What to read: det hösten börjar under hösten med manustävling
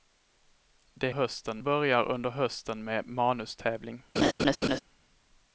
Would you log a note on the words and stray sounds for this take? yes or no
yes